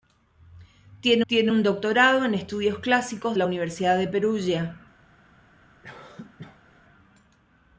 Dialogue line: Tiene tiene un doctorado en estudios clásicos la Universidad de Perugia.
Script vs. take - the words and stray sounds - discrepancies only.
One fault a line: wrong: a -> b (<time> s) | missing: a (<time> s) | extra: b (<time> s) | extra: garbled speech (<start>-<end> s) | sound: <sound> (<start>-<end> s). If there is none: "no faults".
sound: cough (5.8-6.8 s)